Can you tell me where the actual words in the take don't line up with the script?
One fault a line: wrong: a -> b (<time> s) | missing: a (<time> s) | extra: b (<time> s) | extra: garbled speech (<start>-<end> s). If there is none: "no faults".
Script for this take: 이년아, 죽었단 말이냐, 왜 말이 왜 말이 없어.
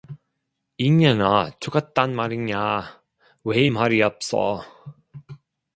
missing: 왜 말이 (4.0 s)